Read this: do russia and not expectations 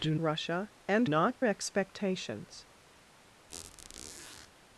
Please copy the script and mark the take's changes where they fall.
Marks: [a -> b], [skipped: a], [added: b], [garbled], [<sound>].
do russia and not expectations [squeak]